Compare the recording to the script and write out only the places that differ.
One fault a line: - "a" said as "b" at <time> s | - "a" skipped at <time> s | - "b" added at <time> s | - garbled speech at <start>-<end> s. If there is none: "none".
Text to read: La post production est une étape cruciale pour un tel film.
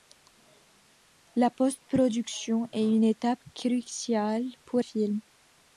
- "un tel" skipped at 4.8 s